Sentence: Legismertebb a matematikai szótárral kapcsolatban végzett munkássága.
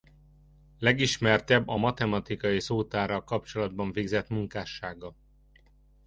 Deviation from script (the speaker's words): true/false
false